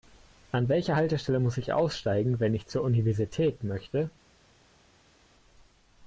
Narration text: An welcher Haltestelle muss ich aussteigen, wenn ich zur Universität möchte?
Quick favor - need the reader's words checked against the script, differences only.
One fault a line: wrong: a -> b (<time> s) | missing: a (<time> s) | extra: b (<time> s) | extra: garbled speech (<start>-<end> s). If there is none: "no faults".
no faults